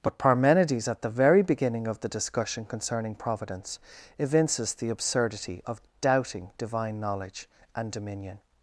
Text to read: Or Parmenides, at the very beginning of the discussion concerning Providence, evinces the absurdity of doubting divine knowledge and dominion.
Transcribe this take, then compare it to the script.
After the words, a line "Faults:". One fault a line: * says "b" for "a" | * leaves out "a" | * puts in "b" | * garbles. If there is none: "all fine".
But Parmenides, at the very beginning of the discussion concerning Providence, evinces the absurdity of doubting divine knowledge and dominion.
Faults:
* says "But" for "Or"